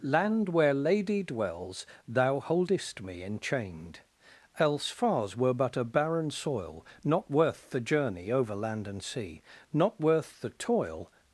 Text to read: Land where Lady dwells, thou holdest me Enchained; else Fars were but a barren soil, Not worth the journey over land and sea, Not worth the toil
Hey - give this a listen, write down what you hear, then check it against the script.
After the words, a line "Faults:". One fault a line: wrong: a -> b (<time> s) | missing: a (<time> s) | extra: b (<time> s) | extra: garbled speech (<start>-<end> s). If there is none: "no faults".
Land where Lady dwells, thou holdest me Enchained; else Fars were but a barren soil, Not worth the journey over land and sea, Not worth the toil
Faults:
no faults